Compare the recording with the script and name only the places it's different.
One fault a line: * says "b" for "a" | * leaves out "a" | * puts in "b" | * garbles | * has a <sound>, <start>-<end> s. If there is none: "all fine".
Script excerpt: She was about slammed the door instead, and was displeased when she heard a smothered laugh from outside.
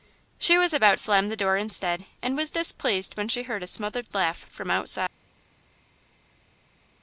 all fine